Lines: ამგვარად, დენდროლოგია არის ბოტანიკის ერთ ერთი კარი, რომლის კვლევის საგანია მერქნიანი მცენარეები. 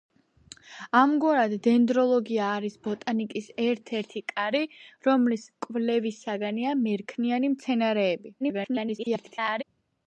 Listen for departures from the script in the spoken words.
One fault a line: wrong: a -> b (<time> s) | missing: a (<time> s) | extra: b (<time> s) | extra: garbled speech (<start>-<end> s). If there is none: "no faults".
extra: garbled speech (8.4-9.6 s)